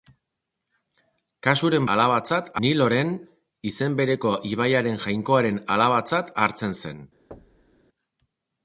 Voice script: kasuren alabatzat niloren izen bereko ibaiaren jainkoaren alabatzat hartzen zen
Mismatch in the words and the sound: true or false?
true